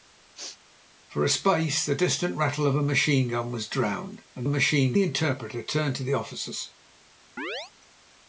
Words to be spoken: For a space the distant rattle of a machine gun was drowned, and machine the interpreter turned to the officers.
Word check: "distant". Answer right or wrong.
right